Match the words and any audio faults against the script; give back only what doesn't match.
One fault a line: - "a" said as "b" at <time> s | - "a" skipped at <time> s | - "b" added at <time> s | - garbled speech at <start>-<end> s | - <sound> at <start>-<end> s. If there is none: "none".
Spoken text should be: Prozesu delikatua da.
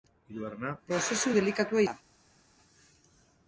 none